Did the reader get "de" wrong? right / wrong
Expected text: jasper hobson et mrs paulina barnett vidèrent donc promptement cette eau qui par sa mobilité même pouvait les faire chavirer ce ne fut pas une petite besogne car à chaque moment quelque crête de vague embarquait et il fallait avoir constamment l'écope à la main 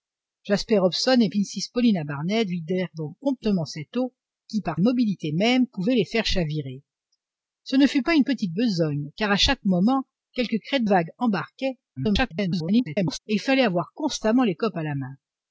wrong